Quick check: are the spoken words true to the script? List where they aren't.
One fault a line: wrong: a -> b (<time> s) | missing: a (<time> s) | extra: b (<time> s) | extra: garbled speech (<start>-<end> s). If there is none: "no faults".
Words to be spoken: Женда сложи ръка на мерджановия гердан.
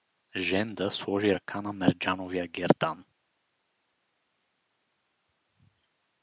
no faults